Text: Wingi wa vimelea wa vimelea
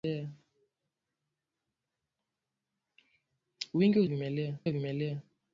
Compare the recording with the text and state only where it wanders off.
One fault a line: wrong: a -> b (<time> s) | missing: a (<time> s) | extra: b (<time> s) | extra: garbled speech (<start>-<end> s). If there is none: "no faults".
no faults